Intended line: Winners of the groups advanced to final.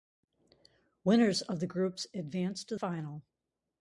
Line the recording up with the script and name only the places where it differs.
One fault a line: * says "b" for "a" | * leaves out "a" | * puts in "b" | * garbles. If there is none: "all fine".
all fine